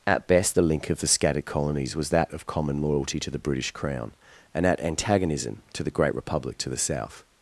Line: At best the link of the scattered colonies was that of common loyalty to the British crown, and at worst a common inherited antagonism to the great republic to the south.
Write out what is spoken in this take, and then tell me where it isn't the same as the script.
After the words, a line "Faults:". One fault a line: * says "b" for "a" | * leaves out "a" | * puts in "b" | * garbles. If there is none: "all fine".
At best the link of the scattered colonies was that of common loyalty to the British crown, and at antagonism to the great republic to the south.
Faults:
* leaves out "worst a common inherited"